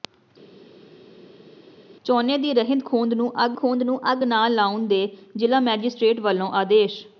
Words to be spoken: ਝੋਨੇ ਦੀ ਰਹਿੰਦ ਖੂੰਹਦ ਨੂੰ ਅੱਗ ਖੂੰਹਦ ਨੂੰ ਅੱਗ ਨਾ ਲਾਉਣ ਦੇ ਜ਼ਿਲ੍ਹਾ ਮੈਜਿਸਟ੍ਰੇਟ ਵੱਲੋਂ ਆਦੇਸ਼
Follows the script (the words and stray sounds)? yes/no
yes